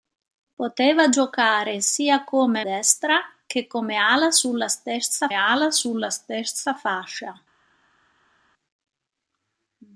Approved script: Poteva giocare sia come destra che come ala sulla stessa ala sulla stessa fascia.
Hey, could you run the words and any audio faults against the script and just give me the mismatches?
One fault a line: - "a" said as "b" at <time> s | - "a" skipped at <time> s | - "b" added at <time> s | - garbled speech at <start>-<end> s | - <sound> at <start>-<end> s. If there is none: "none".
none